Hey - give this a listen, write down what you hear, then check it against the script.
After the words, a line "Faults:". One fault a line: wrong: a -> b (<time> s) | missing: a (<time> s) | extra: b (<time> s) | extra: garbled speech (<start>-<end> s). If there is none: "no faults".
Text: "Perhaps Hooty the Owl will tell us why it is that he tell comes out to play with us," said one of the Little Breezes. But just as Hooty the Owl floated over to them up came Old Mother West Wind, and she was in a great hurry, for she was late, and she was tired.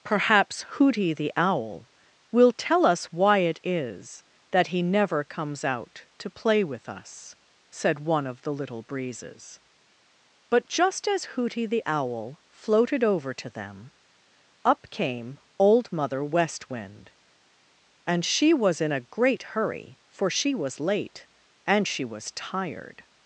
"Perhaps Hooty the Owl will tell us why it is that he never comes out to play with us," said one of the Little Breezes. But just as Hooty the Owl floated over to them up came Old Mother West Wind, and she was in a great hurry, for she was late, and she was tired.
Faults:
wrong: tell -> never (4.8 s)